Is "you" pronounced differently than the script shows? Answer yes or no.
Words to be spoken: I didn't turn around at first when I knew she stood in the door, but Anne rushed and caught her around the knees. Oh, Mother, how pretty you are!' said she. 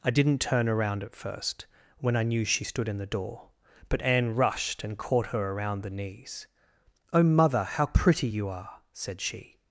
no